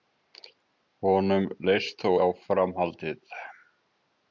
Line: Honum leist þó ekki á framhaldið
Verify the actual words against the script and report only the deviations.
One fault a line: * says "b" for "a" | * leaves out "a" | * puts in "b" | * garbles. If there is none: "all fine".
* leaves out "ekki"